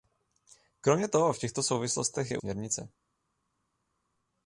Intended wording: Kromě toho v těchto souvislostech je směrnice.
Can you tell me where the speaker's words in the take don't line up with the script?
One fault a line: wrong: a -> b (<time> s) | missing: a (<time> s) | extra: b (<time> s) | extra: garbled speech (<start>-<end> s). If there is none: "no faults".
no faults